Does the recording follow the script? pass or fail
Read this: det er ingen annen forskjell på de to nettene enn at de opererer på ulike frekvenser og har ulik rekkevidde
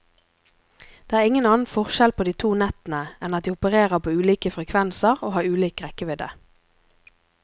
pass